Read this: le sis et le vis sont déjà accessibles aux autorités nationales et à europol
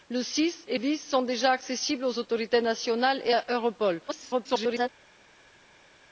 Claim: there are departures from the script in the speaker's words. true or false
true